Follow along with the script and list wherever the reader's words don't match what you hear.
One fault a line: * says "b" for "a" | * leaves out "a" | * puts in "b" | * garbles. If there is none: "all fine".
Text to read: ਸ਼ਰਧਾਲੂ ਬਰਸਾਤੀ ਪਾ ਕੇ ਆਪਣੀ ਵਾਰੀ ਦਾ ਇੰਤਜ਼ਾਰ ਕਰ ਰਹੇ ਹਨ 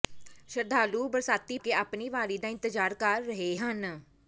* leaves out "ਪਾ"